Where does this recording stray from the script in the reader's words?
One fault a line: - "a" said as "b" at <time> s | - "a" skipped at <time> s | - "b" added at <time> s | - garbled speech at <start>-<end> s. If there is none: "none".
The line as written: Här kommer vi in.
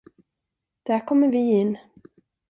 - "Här" said as "Där" at 0.8 s